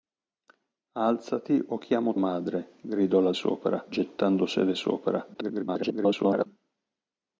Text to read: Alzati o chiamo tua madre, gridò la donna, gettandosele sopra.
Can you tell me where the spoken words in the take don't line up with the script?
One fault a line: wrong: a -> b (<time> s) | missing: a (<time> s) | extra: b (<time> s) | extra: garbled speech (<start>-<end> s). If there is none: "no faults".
missing: tua (2.1 s)
wrong: donna -> sopra (3.3 s)
extra: garbled speech (5.3-6.5 s)